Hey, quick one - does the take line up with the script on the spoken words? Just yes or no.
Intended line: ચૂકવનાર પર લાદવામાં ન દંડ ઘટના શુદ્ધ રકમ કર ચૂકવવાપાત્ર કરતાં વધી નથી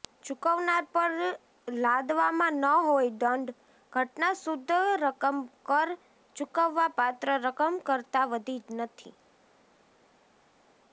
no